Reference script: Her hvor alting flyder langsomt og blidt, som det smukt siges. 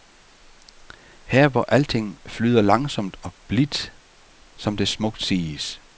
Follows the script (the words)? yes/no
yes